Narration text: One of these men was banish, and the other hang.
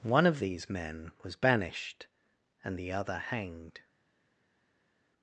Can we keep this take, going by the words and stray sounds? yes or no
no